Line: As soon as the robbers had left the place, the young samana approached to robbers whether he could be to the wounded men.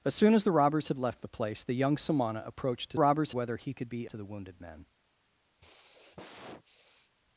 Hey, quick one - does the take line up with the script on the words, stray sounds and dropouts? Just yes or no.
no